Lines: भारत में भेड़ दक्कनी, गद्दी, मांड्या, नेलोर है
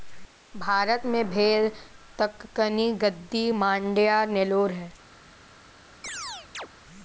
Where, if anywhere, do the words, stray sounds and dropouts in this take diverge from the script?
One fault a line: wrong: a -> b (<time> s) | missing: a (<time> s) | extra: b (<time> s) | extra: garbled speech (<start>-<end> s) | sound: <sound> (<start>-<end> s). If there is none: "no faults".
sound: chirp (6.0-6.7 s)